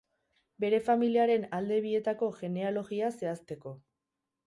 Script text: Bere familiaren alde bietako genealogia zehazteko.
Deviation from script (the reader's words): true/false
false